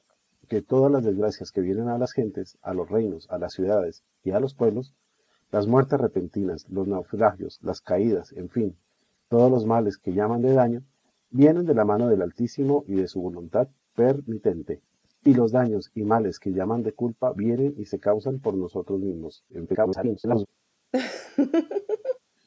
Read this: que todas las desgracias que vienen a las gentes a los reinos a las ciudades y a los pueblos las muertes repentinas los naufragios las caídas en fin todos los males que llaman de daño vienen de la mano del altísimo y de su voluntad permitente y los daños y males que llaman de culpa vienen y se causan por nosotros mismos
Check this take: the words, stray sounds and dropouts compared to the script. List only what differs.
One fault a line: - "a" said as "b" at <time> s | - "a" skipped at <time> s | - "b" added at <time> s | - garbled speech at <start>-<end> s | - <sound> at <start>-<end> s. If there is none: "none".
- garbled speech at 19.5-20.5 s
- laugh at 20.9-22.2 s